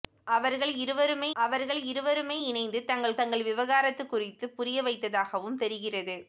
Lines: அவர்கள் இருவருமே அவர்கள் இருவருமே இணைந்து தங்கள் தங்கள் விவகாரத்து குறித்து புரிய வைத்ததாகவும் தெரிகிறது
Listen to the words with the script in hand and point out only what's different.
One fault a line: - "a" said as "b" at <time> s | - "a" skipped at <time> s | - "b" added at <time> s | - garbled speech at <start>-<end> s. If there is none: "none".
none